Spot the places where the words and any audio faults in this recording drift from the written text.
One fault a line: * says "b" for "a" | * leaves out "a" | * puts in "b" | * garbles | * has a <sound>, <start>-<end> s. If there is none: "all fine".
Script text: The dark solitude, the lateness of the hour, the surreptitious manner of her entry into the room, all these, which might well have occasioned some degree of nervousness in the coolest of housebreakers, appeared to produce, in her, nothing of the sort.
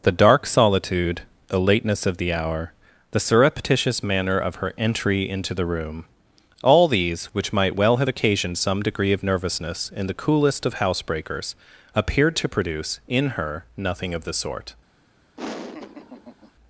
* has a laugh, 15.4-16.5 s